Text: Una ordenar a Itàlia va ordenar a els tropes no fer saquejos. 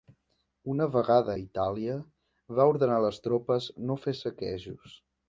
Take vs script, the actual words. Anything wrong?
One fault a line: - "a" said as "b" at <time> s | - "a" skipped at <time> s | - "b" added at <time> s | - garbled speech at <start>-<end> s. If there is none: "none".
- "ordenar" said as "vegada" at 0.9 s
- "els" said as "les" at 3.0 s